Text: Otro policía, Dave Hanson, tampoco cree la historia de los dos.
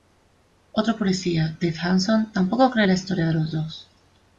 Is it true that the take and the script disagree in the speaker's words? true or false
false